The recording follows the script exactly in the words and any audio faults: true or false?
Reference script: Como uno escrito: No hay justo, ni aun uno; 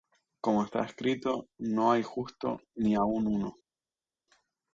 false